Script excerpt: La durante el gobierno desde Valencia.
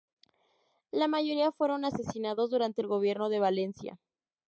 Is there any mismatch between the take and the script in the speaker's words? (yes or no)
yes